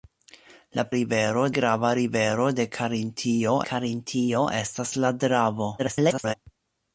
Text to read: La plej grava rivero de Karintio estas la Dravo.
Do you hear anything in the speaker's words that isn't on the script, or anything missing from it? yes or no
yes